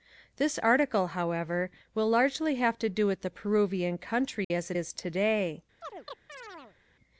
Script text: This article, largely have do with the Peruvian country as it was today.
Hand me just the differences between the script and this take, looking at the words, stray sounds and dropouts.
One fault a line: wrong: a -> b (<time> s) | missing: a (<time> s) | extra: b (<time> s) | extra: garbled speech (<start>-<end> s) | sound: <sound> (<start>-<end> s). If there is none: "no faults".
extra: however will (1.1 s)
extra: to (2.8 s)
sound: dropout (4.4-4.5 s)
wrong: was -> is (4.7 s)
sound: chirp (5.8-6.8 s)